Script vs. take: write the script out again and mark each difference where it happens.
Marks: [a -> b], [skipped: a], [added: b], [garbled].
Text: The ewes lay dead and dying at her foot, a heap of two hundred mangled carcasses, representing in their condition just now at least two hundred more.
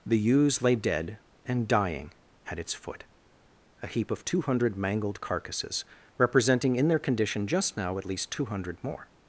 The ewes lay dead and dying at [her -> its] foot, a heap of two hundred mangled carcasses, representing in their condition just now at least two hundred more.